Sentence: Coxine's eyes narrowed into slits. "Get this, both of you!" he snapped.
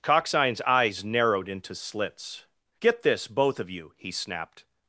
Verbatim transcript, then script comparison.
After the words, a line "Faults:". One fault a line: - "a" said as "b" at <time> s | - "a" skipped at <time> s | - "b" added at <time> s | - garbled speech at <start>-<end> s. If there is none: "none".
Coxine's eyes narrowed into slits. "Get this, both of you!" he snapped.
Faults:
none